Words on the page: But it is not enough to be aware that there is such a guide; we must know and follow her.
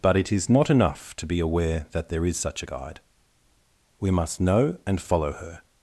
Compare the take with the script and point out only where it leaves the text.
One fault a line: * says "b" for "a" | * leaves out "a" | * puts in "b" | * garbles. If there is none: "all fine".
all fine